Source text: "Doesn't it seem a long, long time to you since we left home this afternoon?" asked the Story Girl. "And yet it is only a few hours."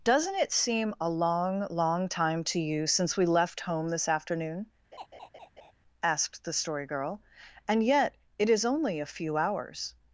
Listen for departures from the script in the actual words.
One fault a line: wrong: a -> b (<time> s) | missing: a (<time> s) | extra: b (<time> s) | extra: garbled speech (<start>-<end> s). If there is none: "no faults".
no faults